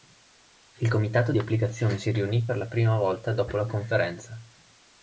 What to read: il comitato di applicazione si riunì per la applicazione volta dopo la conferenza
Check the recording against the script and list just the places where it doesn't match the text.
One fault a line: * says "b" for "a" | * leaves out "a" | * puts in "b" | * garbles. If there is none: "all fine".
* says "prima" for "applicazione"